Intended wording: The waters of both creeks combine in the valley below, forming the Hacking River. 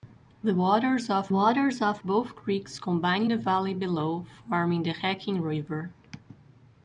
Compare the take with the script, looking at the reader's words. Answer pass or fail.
fail